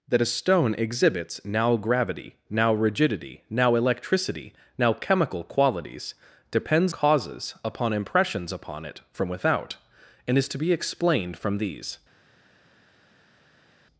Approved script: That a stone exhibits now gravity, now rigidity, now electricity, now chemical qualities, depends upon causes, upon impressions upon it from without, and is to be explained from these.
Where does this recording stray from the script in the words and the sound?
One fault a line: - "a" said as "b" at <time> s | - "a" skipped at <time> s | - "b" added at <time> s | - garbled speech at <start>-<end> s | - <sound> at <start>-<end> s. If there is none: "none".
- "upon" skipped at 6.9 s